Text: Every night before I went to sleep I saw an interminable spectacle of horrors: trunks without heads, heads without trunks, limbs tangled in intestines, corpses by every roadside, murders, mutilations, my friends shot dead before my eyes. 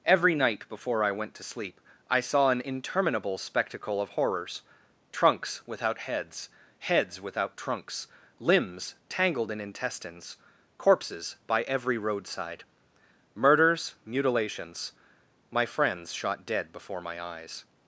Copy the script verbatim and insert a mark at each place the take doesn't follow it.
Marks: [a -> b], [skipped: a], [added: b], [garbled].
Every night before I went to sleep I saw an interminable spectacle of horrors: trunks without heads, heads without trunks, limbs tangled in intestines, corpses by every roadside, murders, mutilations, my friends shot dead before my eyes.